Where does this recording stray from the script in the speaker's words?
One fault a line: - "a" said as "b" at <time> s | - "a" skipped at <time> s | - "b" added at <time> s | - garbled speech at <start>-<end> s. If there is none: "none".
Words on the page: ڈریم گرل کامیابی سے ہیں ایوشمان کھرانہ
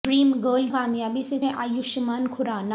none